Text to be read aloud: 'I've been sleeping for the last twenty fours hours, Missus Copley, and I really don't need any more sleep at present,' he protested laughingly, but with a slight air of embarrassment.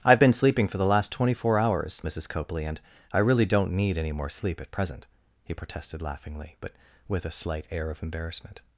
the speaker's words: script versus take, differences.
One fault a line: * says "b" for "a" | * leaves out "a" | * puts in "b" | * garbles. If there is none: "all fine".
* says "four" for "fours"